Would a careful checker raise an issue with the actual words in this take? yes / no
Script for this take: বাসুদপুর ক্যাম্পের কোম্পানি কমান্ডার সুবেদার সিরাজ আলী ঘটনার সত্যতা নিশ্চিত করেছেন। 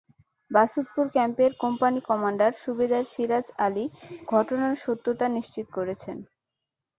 no